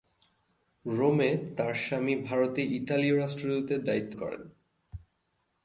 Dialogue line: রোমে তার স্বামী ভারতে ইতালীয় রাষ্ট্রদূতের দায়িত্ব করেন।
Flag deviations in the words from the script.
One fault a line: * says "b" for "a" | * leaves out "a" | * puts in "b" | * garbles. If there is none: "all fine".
all fine